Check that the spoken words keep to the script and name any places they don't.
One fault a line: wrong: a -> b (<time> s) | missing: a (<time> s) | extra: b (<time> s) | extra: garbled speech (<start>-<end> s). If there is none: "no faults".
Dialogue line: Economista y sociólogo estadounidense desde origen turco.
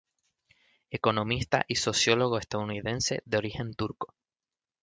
wrong: desde -> de (3.2 s)